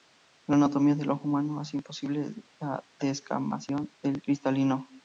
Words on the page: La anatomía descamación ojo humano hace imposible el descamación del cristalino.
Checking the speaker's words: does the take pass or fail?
fail